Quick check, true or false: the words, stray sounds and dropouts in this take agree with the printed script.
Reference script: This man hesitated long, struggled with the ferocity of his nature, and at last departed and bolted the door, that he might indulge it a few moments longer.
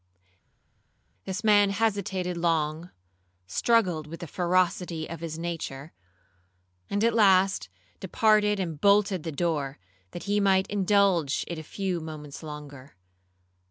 true